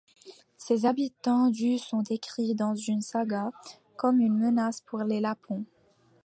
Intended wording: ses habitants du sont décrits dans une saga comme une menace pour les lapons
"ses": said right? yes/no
yes